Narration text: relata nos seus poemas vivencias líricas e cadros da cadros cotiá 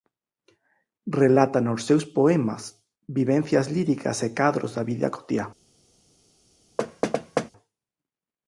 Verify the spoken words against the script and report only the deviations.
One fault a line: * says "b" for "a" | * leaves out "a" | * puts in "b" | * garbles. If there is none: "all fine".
* says "vida" for "cadros"